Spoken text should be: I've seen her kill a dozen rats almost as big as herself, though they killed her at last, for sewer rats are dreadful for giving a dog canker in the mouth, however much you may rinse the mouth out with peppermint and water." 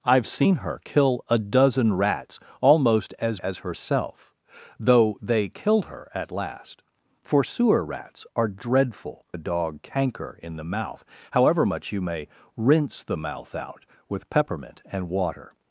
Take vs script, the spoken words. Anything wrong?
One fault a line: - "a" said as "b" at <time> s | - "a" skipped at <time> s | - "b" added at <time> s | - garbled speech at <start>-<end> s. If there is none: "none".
- "big" skipped at 3.4 s
- "for giving" skipped at 9.3 s